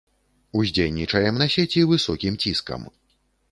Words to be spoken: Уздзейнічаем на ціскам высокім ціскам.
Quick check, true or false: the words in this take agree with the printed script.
false